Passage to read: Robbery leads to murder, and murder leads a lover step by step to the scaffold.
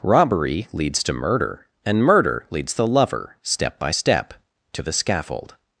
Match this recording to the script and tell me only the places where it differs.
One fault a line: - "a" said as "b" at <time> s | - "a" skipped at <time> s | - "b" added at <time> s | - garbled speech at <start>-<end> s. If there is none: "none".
- "a" said as "the" at 2.7 s